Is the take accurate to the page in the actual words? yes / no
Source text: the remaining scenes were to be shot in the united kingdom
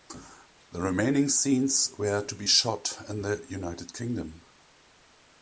yes